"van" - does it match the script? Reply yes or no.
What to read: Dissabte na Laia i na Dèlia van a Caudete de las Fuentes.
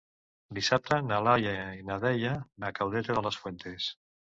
no